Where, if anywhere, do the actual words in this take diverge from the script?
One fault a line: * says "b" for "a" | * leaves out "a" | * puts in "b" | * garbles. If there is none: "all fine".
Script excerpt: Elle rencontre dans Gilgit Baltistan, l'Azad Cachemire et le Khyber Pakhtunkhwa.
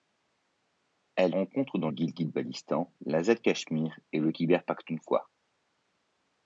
all fine